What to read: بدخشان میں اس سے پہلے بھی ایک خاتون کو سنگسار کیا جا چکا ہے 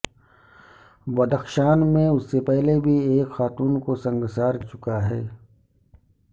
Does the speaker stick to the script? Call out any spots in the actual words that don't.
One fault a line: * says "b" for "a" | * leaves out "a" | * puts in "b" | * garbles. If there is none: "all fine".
* leaves out "کیا جا"